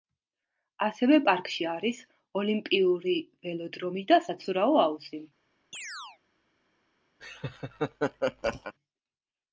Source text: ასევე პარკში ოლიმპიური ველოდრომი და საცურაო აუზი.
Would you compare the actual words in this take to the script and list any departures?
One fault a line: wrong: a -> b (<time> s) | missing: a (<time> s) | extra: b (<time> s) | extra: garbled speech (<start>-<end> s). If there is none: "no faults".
extra: არის (1.7 s)